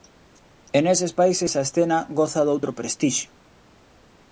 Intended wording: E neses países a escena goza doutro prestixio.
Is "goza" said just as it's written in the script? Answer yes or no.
yes